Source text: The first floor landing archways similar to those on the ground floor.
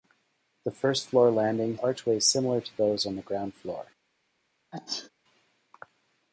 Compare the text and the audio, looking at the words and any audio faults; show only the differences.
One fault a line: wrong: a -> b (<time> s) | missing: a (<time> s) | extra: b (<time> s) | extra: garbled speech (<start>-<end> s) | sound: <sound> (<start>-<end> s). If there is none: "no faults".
sound: sneeze (4.7-5.1 s)